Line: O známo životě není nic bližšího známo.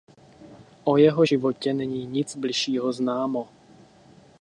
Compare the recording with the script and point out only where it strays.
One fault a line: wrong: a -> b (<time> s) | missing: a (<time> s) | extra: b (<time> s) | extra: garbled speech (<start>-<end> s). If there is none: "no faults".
wrong: známo -> jeho (1.0 s)